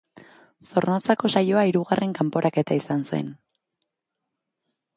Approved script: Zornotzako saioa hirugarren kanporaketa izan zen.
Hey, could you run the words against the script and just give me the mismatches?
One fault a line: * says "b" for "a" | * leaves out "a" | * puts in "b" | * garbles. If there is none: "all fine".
all fine